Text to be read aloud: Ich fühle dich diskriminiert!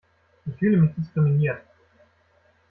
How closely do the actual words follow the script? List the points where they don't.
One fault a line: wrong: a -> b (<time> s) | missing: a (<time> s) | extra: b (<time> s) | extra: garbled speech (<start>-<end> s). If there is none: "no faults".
wrong: dich -> mich (0.8 s)